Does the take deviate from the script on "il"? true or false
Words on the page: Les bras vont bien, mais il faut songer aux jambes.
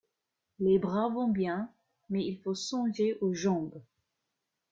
false